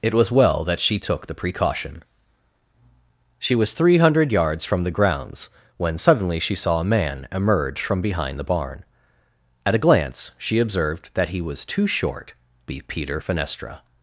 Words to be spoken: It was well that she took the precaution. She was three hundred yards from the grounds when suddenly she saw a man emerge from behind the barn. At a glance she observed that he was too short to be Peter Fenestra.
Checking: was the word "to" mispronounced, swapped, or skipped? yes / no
yes